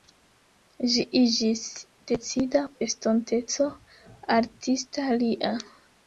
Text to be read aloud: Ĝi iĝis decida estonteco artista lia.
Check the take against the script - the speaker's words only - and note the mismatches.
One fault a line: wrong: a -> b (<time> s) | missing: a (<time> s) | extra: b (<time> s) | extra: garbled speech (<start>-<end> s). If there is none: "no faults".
no faults